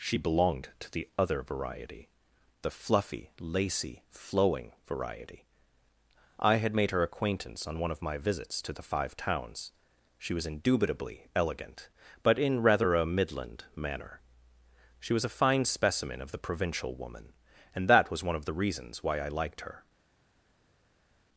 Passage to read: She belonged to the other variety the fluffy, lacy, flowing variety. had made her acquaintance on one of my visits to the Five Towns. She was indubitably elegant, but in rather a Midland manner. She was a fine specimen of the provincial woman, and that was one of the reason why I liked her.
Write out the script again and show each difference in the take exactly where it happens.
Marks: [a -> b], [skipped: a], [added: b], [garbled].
She belonged to the other variety the fluffy, lacy, flowing variety. [added: I] had made her acquaintance on one of my visits to the Five Towns. She was indubitably elegant, but in rather a Midland manner. She was a fine specimen of the provincial woman, and that was one of the [reason -> reasons] why I liked her.